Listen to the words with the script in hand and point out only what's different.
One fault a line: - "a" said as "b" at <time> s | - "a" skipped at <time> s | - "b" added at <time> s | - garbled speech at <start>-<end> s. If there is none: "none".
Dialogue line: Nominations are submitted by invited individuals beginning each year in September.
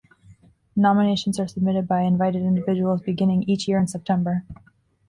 none